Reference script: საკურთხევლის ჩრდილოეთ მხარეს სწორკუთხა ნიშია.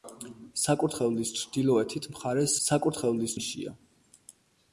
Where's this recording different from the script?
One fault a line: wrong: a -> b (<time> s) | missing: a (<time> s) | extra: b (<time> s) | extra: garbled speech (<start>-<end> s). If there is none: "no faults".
wrong: სწორკუთხა -> საკურთხევლის (2.6 s)